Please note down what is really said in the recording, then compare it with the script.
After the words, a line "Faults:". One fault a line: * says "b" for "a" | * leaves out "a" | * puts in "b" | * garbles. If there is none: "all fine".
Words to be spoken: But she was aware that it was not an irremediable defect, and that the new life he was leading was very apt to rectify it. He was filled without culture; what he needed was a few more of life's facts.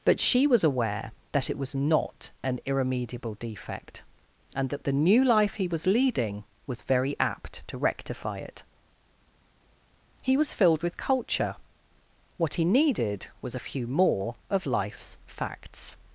But she was aware that it was not an irremediable defect, and that the new life he was leading was very apt to rectify it. He was filled with culture; what he needed was a few more of life's facts.
Faults:
* says "with" for "without"